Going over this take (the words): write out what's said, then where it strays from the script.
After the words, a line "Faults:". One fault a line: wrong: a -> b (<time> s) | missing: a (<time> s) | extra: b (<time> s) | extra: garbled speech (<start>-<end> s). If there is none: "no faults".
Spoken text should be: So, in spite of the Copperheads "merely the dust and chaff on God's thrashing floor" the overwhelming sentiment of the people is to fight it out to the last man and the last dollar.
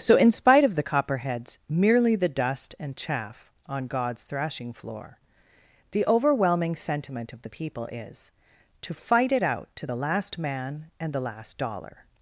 So, in spite of the Copperheads "merely the dust and chaff on God's thrashing floor" the overwhelming sentiment of the people is to fight it out to the last man and the last dollar.
Faults:
no faults